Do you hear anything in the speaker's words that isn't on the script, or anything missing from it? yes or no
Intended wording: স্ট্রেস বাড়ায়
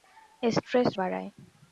no